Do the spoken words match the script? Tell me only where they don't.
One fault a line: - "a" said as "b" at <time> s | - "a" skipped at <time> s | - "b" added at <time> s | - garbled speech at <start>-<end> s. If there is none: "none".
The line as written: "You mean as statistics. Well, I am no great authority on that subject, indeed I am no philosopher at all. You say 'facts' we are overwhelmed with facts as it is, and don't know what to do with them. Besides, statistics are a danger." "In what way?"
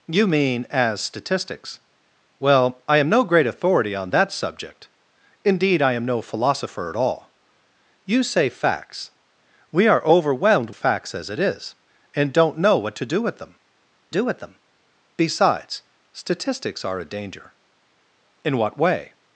- "with" skipped at 10.7 s
- "do with them" added at 14.1 s